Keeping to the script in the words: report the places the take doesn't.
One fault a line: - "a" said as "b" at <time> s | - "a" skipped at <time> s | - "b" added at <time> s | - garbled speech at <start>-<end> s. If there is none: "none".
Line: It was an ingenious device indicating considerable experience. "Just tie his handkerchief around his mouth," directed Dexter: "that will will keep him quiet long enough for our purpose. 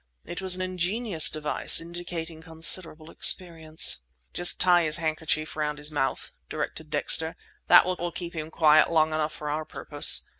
none